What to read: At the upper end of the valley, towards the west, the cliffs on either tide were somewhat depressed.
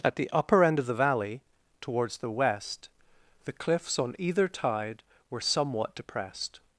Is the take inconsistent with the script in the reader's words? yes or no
no